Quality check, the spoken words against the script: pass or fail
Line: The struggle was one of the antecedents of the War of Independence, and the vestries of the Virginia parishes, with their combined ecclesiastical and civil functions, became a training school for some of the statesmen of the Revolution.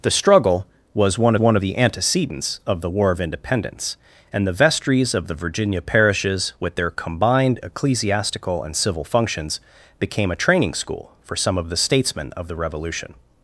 fail